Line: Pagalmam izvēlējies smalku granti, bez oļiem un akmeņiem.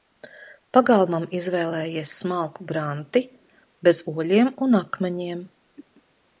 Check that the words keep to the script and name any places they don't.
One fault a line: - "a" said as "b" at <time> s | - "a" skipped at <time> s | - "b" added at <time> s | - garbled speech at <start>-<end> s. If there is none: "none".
none